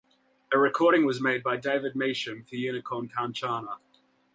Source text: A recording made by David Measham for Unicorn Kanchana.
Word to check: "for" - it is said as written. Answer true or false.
true